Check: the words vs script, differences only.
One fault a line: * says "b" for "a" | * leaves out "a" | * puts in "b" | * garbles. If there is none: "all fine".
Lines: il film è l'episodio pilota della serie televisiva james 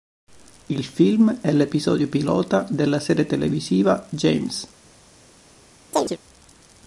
all fine